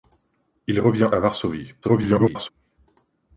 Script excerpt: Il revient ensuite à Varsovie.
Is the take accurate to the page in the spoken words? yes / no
no